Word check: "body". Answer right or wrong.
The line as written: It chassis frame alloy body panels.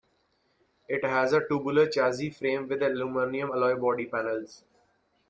right